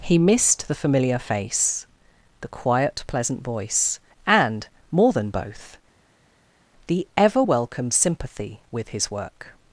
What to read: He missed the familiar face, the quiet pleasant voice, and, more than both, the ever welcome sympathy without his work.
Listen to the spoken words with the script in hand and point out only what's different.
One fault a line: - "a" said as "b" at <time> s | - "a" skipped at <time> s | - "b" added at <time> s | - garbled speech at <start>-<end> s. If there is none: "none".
- "without" said as "with" at 8.7 s